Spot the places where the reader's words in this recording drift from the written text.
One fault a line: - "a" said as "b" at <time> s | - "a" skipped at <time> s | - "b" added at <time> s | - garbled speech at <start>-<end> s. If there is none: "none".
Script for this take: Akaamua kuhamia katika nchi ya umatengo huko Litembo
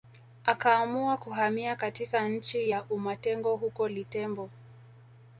none